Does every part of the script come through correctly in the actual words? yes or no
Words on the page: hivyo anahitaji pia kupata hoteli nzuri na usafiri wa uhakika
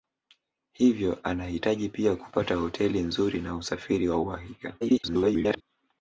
no